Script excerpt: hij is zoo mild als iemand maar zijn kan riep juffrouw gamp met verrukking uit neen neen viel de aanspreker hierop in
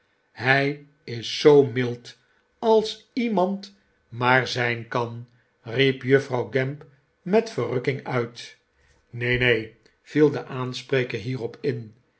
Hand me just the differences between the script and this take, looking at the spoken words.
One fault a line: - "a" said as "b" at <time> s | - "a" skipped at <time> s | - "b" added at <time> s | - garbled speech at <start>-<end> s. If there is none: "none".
none